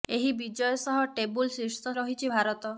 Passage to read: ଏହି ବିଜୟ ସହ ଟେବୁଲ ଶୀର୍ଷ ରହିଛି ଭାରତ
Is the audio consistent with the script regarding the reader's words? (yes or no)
yes